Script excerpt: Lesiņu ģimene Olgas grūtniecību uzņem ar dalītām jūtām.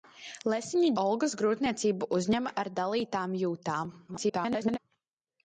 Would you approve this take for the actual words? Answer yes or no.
no